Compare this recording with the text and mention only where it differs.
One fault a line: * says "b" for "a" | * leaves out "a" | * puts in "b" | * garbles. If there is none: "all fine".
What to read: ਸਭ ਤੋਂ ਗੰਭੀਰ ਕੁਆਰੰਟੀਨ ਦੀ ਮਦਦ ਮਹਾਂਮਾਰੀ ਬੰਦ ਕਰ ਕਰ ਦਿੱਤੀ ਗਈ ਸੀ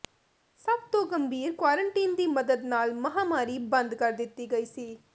* puts in "ਨਾਲ"
* leaves out "ਕਰ"